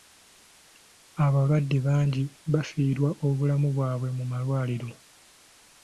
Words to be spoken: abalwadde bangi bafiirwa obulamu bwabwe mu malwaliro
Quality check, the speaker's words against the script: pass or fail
pass